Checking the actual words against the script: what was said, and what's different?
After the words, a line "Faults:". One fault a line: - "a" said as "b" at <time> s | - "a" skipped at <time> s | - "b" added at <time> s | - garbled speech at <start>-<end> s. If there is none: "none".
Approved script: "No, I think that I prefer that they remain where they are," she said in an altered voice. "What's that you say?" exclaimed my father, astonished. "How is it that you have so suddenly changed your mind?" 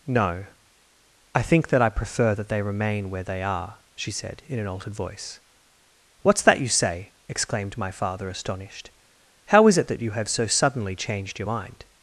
"No, I think that I prefer that they remain where they are," she said in an altered voice. "What's that you say?" exclaimed my father, astonished. "How is it that you have so suddenly changed your mind?"
Faults:
none